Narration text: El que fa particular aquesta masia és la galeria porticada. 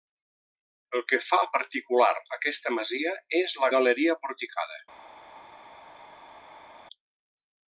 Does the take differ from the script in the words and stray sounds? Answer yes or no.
no